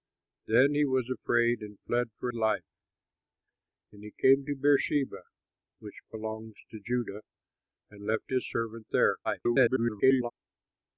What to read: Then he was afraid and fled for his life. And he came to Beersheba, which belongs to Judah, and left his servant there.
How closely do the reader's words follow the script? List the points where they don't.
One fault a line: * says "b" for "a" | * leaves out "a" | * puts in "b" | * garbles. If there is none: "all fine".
* leaves out "his"
* garbles